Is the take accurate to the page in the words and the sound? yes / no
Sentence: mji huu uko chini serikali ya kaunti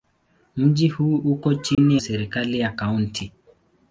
no